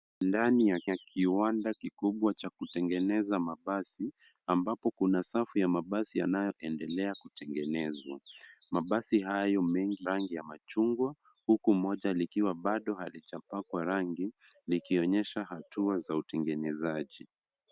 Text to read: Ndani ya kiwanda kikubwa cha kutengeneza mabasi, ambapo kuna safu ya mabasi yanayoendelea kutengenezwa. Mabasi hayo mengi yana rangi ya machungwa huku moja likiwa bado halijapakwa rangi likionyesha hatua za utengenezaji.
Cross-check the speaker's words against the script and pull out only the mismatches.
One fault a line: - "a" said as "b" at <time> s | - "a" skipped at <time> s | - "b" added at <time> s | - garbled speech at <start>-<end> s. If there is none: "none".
- "ya" added at 0.8 s
- "yana" skipped at 10.1 s